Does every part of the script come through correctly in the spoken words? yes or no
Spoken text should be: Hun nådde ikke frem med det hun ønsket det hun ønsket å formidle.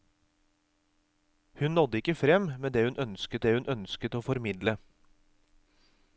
yes